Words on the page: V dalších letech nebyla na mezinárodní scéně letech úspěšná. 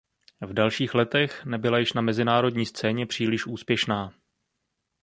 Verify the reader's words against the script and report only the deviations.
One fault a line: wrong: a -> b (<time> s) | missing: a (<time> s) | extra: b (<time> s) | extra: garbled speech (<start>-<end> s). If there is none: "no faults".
extra: již (1.8 s)
wrong: letech -> příliš (3.0 s)